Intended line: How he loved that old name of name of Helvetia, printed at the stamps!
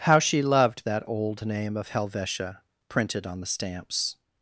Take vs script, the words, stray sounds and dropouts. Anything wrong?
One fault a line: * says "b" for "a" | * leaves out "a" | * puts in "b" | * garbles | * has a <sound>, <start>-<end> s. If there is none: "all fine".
* says "she" for "he"
* leaves out "name of"
* says "on" for "at"